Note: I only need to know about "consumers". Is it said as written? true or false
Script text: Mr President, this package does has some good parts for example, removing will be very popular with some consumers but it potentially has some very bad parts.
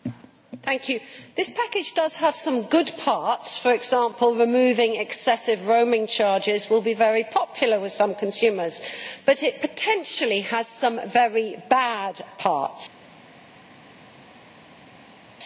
true